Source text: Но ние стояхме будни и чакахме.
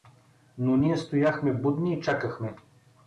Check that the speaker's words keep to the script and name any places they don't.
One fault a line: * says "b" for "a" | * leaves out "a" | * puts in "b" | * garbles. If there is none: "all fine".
all fine